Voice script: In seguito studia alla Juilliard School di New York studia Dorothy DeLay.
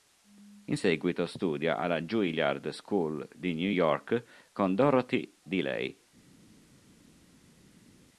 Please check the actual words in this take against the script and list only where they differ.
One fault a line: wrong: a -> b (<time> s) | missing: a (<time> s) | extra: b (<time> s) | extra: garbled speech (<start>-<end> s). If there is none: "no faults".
wrong: studia -> con (4.5 s)